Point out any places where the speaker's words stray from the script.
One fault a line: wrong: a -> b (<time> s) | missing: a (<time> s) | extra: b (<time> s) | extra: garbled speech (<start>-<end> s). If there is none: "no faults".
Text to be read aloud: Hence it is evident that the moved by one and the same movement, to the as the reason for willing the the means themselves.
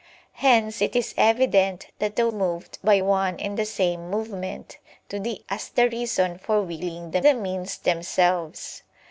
no faults